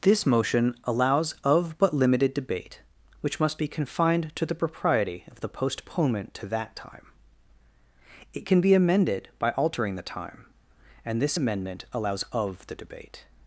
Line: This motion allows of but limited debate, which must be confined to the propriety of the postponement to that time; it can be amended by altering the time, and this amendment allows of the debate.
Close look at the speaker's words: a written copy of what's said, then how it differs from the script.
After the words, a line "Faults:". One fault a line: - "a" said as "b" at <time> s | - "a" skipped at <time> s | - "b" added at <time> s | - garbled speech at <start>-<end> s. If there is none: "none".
This motion allows of but limited debate, which must be confined to the propriety of the postponement to that time; it can be amended by altering the time, and this amendment allows of the debate.
Faults:
none